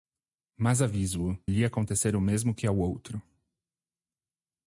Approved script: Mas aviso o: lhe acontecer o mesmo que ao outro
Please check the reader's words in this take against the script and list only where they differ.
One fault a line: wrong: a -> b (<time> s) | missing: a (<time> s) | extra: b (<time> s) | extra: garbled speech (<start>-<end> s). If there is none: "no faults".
no faults